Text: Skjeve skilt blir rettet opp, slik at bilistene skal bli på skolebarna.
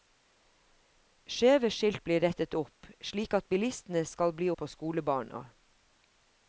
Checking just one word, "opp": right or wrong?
right